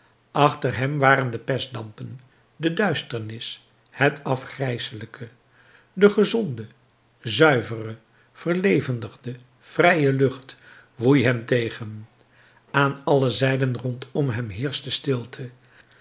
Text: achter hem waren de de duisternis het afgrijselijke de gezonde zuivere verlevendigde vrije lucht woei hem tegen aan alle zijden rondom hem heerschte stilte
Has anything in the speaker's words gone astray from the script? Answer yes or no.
yes